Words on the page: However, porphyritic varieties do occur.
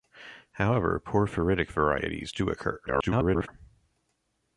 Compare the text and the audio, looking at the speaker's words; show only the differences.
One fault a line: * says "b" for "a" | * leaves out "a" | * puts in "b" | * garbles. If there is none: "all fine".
* garbles